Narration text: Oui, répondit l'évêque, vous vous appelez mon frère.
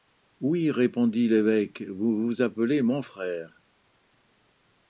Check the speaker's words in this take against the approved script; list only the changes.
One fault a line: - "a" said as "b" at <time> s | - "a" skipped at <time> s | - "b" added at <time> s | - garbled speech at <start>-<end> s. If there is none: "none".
none